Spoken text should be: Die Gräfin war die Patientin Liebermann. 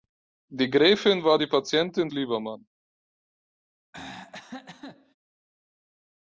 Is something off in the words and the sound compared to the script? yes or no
yes